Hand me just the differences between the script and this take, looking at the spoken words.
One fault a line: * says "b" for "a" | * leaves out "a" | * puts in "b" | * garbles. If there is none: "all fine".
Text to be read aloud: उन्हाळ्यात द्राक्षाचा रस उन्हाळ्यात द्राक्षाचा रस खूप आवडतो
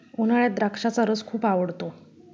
* leaves out "उन्हाळ्यात द्राक्षाचा रस"